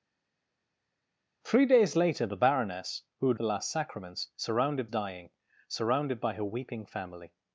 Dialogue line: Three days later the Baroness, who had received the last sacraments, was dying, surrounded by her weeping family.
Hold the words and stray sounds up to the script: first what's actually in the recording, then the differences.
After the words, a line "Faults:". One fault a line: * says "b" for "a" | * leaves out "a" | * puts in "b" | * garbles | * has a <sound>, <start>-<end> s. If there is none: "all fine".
Three days later the Baroness, who had the last sacraments, surrounded dying, surrounded by her weeping family.
Faults:
* leaves out "received"
* says "surrounded" for "was"